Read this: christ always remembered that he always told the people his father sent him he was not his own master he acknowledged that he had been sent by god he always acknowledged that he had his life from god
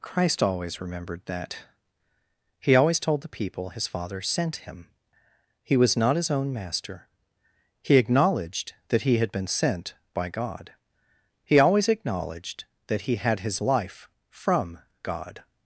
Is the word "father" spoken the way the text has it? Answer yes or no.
yes